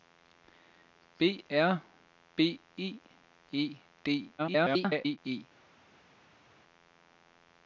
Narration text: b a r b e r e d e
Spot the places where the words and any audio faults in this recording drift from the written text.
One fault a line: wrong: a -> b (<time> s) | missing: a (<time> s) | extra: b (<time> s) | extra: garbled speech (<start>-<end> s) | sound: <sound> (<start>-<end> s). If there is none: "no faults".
missing: a (1.4 s)
missing: r (3.0 s)
extra: garbled speech (4.4-5.2 s)